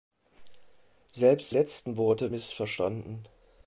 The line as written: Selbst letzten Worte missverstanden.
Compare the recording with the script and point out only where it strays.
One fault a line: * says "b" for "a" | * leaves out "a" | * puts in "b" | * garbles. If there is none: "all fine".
all fine